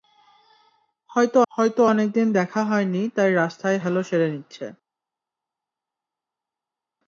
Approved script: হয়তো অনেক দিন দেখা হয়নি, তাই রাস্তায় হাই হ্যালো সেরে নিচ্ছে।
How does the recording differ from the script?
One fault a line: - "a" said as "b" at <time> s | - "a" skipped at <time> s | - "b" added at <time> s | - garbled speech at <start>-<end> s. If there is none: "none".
- "হয়তো" added at 1.5 s
- "হাই" skipped at 3.8 s